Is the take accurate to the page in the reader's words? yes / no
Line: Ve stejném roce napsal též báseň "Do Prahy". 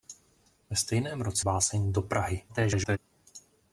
no